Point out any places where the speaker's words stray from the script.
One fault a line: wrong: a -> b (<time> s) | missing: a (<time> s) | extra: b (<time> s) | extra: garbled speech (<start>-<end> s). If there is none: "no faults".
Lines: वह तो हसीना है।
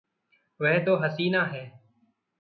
no faults